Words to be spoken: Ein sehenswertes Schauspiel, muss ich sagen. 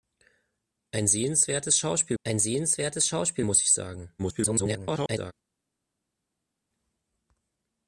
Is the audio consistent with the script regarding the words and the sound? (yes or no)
no